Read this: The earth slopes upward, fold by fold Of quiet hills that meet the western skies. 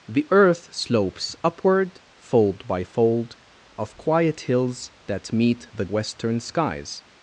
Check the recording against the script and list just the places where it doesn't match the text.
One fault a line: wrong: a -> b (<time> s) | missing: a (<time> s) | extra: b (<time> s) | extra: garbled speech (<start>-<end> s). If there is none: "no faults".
no faults